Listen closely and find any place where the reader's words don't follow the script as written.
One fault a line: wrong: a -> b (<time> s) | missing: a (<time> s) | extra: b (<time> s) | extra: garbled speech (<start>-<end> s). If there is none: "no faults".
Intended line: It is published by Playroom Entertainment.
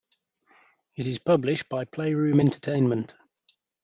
no faults